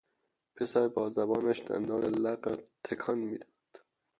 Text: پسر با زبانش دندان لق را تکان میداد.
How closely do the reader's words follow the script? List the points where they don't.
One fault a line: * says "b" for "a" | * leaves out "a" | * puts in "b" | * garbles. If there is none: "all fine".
all fine